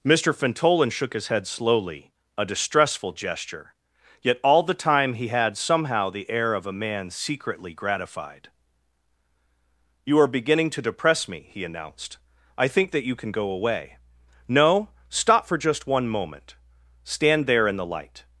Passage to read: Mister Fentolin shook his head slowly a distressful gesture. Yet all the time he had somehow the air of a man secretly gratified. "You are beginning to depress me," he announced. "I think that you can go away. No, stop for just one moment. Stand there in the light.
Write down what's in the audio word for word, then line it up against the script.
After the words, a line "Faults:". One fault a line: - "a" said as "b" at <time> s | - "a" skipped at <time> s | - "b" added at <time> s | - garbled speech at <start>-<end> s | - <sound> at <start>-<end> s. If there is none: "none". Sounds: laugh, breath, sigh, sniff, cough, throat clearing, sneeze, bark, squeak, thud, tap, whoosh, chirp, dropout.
Mister Fentolin shook his head slowly a distressful gesture. Yet all the time he had somehow the air of a man secretly gratified. "You are beginning to depress me," he announced. "I think that you can go away. No, stop for just one moment. Stand there in the light.
Faults:
none